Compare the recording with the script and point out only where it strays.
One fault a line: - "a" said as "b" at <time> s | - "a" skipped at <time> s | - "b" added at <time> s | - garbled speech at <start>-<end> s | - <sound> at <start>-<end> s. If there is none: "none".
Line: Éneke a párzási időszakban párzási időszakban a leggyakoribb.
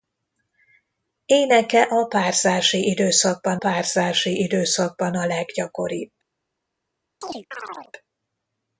- chirp at 7.2-7.9 s